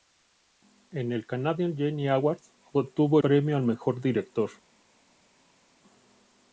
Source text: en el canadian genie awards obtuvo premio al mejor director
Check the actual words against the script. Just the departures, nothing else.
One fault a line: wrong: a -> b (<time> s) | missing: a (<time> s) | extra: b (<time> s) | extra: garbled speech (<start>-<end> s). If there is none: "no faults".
no faults